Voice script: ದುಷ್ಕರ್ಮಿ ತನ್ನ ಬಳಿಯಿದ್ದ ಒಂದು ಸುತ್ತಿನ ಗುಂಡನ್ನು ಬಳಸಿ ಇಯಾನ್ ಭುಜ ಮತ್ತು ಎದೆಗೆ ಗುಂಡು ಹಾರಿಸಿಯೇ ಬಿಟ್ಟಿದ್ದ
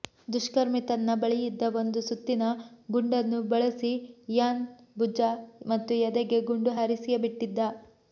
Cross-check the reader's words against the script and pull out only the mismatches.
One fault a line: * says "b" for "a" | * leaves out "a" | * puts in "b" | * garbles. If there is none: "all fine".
all fine